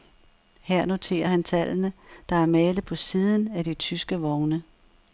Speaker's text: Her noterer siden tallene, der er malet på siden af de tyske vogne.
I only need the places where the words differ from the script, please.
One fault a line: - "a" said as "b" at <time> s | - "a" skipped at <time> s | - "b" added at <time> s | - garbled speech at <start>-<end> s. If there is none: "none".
- "siden" said as "han" at 1.3 s